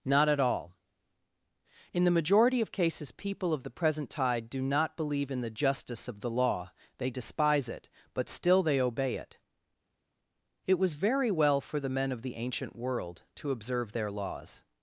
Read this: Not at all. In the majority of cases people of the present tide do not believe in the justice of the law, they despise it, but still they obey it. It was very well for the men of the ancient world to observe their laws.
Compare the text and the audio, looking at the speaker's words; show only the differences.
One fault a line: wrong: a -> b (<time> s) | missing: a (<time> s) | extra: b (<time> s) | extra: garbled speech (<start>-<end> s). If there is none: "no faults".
no faults